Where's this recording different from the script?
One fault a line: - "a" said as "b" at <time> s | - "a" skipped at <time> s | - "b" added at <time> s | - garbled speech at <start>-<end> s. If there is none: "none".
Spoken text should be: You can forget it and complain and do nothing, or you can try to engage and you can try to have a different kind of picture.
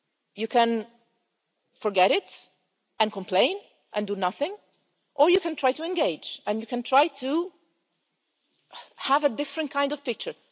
none